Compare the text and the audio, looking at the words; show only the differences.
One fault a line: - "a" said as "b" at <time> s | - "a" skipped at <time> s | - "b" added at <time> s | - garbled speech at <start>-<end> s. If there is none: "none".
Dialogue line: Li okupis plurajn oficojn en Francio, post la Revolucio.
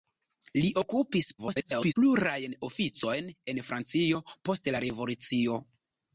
- garbled speech at 1.4-1.9 s